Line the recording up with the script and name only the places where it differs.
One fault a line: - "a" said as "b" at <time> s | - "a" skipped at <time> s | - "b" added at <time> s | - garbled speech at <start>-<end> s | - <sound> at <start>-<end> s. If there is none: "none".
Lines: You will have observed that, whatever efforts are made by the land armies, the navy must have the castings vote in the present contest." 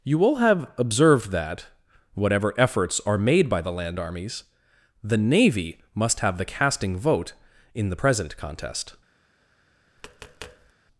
- "castings" said as "casting" at 6.4 s
- tap at 10.0-10.7 s